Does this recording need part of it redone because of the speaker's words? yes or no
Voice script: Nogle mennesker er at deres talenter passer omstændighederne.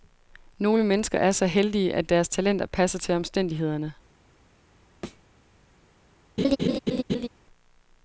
yes